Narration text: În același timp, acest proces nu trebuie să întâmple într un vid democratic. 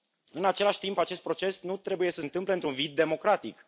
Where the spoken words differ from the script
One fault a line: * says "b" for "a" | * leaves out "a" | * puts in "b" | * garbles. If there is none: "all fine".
all fine